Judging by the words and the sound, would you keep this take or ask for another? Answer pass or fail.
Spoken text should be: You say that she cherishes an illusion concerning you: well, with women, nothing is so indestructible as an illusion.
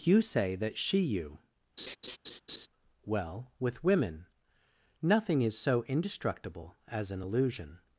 fail